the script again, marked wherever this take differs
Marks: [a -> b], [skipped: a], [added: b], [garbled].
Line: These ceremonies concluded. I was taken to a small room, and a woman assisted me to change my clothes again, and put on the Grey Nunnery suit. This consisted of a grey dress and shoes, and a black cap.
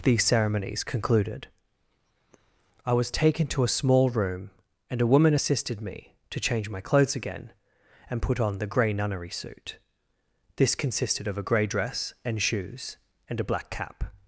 These ceremonies concluded. I was taken to a small room, and a woman assisted me to change my clothes again, and put on the Grey Nunnery suit. This consisted of a grey dress and shoes, and a black cap.